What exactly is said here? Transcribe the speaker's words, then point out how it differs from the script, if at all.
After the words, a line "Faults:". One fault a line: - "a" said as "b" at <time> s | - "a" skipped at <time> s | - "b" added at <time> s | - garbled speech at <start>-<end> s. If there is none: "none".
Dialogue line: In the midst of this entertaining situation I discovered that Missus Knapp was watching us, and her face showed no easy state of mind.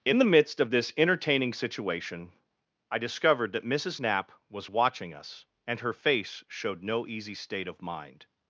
In the midst of this entertaining situation I discovered that Missus Knapp was watching us, and her face showed no easy state of mind.
Faults:
none